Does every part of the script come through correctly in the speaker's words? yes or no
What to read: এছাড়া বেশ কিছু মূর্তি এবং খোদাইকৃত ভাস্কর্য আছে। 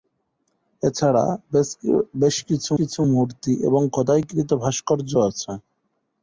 no